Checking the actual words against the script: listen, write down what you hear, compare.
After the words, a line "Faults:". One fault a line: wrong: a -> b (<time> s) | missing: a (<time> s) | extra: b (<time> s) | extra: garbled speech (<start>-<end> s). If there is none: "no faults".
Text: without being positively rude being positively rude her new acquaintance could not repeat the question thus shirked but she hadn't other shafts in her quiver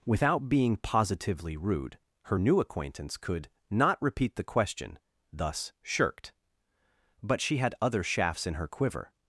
without being positively rude her new acquaintance could not repeat the question thus shirked but she had other shafts in her quiver
Faults:
missing: being positively rude (2.0 s)
wrong: hadn't -> had (7.6 s)